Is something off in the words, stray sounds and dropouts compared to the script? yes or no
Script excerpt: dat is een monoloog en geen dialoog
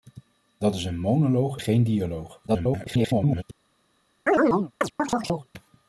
yes